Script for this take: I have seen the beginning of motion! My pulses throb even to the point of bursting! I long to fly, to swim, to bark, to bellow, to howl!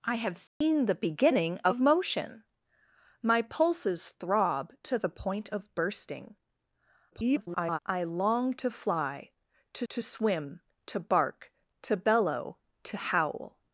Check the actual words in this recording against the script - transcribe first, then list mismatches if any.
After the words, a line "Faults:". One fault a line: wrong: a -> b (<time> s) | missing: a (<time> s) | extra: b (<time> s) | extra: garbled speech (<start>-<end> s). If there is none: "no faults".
I have seen the beginning of motion! My pulses throb to the point of bursting! [garbled] I long to fly, to to swim, to bark, to bellow, to howl!
Faults:
missing: even (4.7 s)
extra: garbled speech (7.1-7.8 s)
extra: to (9.9 s)